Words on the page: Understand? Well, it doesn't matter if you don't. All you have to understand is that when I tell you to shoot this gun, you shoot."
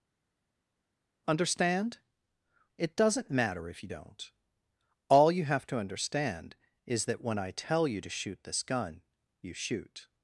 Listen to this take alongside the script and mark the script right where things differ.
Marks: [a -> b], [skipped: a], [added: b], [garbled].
Understand? [skipped: Well,] it doesn't matter if you don't. All you have to understand is that when I tell you to shoot this gun, you shoot."